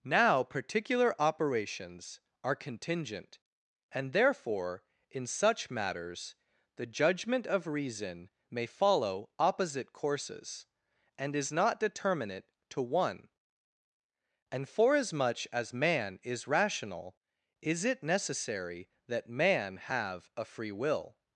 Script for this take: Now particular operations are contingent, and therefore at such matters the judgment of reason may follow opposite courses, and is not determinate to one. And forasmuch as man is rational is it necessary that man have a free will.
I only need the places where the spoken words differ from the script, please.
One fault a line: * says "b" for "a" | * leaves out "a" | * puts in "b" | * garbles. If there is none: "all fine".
* says "in" for "at"